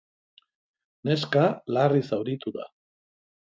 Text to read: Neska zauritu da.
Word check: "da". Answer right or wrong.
right